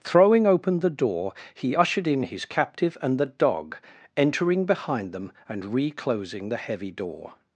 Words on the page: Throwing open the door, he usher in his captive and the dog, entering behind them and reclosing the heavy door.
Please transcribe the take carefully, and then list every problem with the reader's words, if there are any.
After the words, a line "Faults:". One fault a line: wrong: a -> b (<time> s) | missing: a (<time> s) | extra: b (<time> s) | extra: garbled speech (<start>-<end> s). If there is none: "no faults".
Throwing open the door, he ushered in his captive and the dog, entering behind them and reclosing the heavy door.
Faults:
wrong: usher -> ushered (1.8 s)